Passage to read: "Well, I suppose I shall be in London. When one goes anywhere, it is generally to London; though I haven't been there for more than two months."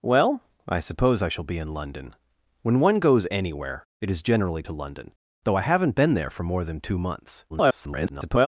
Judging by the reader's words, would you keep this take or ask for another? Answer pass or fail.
fail